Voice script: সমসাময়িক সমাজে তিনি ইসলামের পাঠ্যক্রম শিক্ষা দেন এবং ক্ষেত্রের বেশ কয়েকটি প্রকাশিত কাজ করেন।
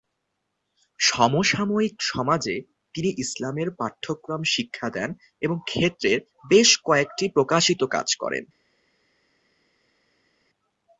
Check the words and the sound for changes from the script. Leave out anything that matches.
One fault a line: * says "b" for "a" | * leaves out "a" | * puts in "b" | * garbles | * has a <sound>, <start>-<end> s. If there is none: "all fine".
all fine